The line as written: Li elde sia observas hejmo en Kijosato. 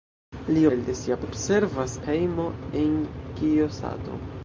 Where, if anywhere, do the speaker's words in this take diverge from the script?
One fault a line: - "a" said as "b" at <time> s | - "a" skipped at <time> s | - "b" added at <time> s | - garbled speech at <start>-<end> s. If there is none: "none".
none